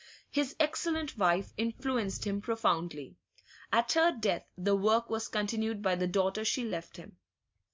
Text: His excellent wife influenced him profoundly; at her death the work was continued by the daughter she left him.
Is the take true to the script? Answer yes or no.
yes